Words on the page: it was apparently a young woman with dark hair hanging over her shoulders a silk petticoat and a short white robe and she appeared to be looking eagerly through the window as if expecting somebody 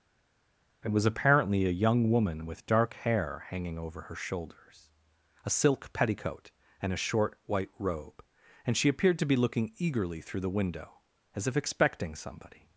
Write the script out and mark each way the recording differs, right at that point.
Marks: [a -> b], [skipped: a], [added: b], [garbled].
it was apparently a young woman with dark hair hanging over her shoulders a silk petticoat and a short white robe and she appeared to be looking eagerly through the window as if expecting somebody